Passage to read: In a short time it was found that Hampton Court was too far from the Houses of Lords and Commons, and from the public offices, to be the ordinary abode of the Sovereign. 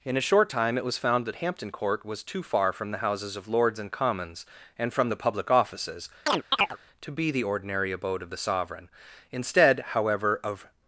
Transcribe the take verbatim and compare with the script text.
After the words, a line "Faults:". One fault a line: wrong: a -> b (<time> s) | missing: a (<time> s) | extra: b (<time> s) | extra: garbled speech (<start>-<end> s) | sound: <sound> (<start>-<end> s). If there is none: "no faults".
In a short time it was found that Hampton Court was too far from the Houses of Lords and Commons, and from the public offices, to be the ordinary abode of the Sovereign. Instead, however, of
Faults:
sound: chirp (6.3-6.8 s)
extra: Instead however of (9.3 s)